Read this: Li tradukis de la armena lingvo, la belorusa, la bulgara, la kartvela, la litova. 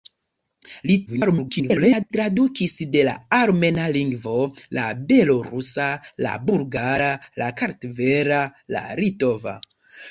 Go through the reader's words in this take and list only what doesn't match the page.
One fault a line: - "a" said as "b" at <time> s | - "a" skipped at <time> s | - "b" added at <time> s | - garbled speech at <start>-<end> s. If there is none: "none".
- garbled speech at 1.1-2.1 s